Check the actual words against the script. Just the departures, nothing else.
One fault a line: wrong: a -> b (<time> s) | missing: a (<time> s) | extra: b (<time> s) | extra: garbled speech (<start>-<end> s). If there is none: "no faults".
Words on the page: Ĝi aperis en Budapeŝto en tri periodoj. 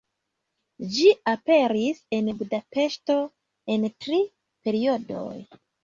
no faults